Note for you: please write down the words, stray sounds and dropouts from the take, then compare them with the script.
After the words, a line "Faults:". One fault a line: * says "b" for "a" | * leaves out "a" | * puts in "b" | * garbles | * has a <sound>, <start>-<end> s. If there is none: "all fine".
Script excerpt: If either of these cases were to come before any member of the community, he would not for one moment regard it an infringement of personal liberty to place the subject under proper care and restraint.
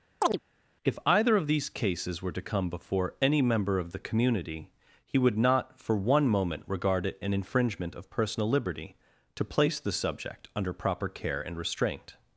If either of these cases were to come before any member of the community, he would not for one moment regard it an infringement of personal liberty to place the subject under proper care and restraint.
Faults:
* has a chirp, 0.2-0.4 s